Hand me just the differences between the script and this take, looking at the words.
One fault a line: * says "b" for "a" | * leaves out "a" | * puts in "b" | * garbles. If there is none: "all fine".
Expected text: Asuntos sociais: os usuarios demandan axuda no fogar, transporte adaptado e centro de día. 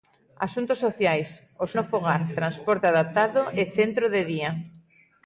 * leaves out "usuarios demandan axuda"